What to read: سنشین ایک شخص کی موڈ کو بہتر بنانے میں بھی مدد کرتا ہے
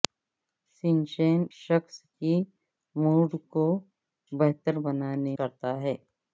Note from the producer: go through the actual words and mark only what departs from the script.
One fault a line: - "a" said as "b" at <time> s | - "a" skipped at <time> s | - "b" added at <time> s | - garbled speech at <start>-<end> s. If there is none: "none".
- "ایک" skipped at 1.4 s
- "میں بھی مدد" skipped at 5.4 s